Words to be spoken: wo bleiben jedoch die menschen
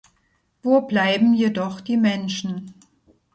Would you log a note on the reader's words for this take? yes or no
no